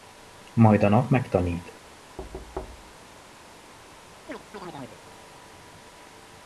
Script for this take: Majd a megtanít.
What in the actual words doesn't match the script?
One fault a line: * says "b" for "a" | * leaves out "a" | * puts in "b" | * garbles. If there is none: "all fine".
* puts in "nap"